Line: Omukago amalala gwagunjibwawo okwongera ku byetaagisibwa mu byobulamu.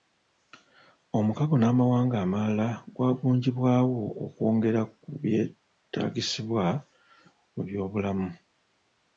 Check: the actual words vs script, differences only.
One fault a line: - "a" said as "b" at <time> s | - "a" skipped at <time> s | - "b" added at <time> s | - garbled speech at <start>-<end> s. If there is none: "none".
- "n'amawanga" added at 1.6 s